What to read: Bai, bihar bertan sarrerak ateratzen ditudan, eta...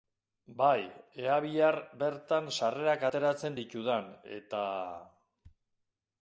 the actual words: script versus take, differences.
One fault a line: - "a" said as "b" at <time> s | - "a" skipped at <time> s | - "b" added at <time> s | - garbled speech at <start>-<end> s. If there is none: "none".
- "ea" added at 1.2 s